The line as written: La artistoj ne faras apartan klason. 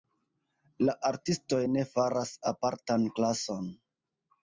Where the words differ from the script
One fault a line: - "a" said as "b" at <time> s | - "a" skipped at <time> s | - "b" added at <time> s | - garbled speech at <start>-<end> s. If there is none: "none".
none